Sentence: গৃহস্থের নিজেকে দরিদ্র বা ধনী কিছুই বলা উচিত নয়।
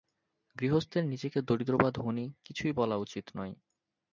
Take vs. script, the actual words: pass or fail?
pass